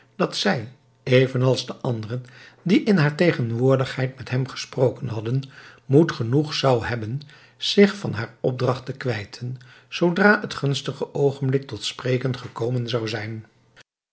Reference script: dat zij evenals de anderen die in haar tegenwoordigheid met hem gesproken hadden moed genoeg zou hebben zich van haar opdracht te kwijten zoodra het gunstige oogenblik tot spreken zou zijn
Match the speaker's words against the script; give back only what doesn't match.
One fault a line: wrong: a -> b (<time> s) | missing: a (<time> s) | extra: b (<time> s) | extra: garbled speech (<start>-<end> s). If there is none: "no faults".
extra: gekomen (12.4 s)